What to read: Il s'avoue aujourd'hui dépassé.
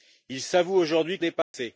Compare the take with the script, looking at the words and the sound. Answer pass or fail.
fail